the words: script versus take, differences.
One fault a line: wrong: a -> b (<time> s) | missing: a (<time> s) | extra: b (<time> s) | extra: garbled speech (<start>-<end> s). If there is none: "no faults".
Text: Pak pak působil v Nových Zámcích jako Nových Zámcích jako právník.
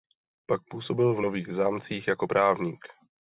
missing: pak (0.6 s)
missing: Nových Zámcích jako (2.3 s)